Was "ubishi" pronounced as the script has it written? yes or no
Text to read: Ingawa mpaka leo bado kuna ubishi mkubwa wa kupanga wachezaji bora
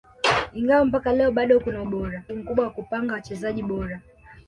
no